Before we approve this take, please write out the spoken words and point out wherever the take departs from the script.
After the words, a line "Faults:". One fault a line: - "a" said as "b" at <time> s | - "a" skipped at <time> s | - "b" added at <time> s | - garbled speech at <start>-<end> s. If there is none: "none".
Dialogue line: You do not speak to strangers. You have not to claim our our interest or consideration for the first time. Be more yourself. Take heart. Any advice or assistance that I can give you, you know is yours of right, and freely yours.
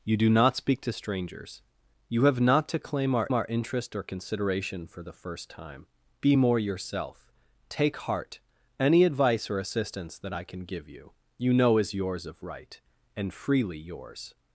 You do not speak to strangers. You have not to claim our our interest or consideration for the first time. Be more yourself. Take heart. Any advice or assistance that I can give you, you know is yours of right, and freely yours.
Faults:
none